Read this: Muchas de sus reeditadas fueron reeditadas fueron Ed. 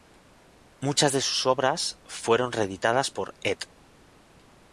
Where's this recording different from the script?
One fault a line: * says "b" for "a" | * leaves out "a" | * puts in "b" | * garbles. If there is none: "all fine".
* says "obras" for "reeditadas"
* says "por" for "fueron"